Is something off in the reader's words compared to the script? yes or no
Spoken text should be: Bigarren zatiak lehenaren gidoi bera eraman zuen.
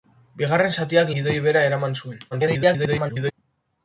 yes